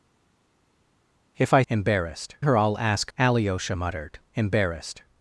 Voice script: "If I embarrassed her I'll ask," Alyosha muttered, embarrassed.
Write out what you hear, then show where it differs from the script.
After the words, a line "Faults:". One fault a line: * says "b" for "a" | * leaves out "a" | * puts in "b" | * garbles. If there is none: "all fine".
"If I embarrassed her I'll ask," Alyosha muttered, embarrassed.
Faults:
all fine